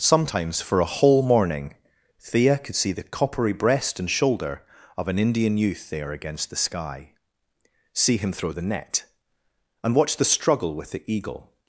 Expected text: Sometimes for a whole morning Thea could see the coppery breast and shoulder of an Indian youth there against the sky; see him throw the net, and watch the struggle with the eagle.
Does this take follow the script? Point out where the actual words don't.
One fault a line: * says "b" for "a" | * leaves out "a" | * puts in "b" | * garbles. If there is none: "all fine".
all fine